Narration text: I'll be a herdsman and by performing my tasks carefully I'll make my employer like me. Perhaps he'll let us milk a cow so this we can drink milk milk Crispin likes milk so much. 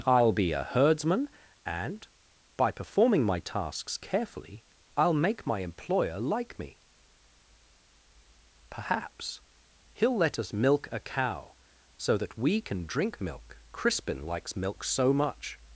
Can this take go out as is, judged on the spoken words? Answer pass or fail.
fail